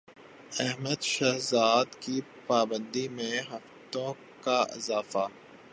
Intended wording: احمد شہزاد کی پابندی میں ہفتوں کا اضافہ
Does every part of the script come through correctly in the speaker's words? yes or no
yes